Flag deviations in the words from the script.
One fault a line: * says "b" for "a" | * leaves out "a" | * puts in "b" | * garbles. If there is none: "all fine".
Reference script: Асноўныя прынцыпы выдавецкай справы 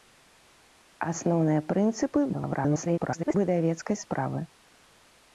* garbles